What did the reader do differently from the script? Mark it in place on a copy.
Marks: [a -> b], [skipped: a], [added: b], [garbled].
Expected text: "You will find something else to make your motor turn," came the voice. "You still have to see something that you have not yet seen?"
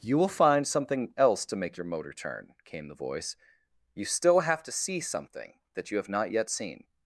"You will find something else to make your motor turn," came the voice. "You still have to see something that you have not yet seen?"